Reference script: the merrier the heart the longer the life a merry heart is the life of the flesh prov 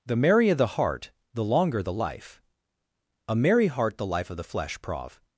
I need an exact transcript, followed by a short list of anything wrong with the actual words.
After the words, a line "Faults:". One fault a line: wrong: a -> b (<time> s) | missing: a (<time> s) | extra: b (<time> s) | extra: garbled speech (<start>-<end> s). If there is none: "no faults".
the merrier the heart the longer the life a merry heart the life of the flesh prov
Faults:
missing: is (4.0 s)